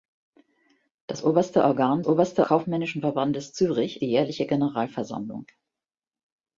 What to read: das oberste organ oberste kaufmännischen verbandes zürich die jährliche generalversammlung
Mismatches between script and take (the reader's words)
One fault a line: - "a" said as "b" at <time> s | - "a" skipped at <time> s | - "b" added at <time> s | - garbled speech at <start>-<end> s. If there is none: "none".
none